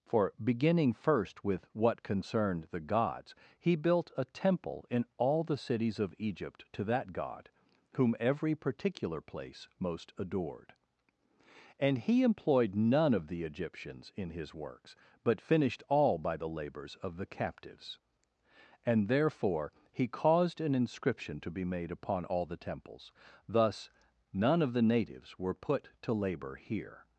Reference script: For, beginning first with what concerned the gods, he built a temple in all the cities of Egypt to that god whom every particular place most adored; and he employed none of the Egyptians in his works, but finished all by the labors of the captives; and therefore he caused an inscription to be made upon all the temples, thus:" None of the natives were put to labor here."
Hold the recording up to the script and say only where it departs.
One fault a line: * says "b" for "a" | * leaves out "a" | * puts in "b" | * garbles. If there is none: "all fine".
all fine